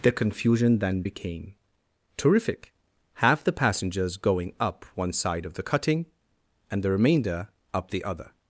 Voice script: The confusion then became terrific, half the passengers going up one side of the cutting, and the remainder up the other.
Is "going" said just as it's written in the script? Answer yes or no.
yes